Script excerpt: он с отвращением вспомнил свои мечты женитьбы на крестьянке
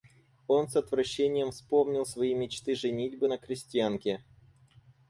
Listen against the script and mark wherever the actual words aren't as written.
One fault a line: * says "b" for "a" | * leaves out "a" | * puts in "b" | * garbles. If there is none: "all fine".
all fine